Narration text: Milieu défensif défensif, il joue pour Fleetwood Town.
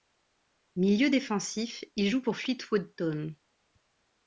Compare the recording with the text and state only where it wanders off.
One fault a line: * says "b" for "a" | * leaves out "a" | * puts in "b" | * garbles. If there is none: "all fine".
* leaves out "défensif"